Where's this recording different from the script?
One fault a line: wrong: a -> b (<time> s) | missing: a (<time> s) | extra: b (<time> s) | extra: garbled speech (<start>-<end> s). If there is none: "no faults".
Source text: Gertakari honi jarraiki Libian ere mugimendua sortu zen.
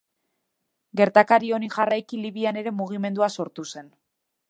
no faults